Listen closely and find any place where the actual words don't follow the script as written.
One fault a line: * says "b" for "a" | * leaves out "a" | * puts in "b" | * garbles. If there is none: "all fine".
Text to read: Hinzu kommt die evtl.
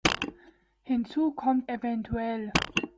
* leaves out "die"